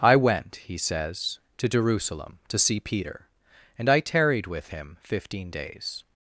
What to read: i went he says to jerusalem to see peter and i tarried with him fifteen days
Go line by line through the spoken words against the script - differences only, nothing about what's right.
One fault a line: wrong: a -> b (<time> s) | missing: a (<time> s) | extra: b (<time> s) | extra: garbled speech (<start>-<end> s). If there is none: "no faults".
no faults